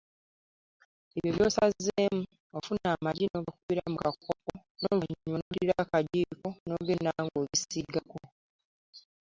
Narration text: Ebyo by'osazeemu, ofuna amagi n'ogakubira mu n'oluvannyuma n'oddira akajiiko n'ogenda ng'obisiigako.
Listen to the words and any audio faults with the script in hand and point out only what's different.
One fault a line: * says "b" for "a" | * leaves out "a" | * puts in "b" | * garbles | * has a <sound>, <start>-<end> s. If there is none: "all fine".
* puts in "kakopo"
* has a dropout, 5.4-5.5 s